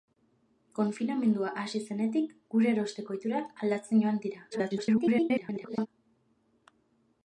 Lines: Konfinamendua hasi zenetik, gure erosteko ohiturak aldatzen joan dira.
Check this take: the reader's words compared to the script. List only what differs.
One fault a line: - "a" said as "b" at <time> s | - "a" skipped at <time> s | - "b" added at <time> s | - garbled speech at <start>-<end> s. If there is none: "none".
- garbled speech at 4.5-5.9 s